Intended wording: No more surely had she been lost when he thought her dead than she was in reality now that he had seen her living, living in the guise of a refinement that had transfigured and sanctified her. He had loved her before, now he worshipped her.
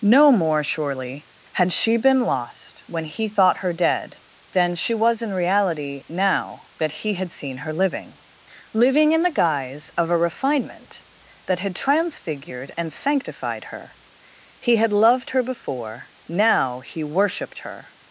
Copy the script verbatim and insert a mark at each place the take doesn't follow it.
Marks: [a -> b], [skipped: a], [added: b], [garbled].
No more surely had she been lost when he thought her dead than she was in reality now that he had seen her living, living in the guise of a refinement that had transfigured and sanctified her. He had loved her before, now he worshipped her.